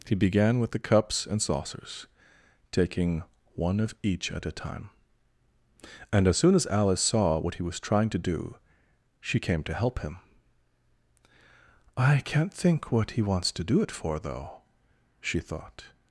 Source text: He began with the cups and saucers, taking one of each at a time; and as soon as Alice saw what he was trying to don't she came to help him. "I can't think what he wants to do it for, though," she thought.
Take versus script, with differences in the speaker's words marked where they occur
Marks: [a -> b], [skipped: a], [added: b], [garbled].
He began with the cups and saucers, taking one of each at a time; and as soon as Alice saw what he was trying to [don't -> do] she came to help him. "I can't think what he wants to do it for, though," she thought.